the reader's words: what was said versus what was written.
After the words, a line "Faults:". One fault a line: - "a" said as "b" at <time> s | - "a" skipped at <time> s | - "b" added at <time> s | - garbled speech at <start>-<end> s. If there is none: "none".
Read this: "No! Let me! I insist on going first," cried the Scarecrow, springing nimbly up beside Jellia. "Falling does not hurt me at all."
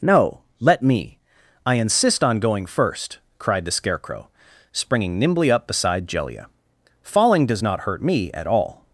"No! Let me! I insist on going first," cried the Scarecrow, springing nimbly up beside Jellia. "Falling does not hurt me at all."
Faults:
none